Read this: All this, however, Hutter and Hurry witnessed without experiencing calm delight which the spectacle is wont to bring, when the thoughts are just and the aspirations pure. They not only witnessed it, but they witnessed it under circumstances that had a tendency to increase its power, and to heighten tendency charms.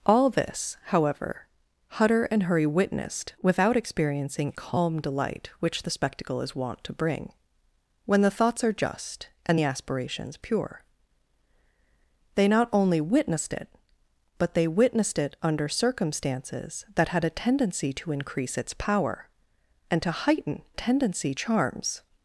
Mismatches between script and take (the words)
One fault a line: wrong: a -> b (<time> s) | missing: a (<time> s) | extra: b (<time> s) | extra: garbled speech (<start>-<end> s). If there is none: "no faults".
no faults